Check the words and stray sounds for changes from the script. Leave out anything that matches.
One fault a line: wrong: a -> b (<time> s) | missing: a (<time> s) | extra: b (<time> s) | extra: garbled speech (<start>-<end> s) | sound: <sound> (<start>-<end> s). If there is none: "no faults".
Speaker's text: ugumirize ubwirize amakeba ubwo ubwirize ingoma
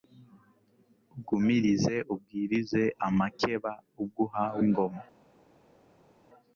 wrong: ubwirize -> uhawe (4.3 s)